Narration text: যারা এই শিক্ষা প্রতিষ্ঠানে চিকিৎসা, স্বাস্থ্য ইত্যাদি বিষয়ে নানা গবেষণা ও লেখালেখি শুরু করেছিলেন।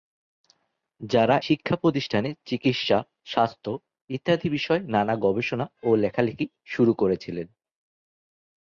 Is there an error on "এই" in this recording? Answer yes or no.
yes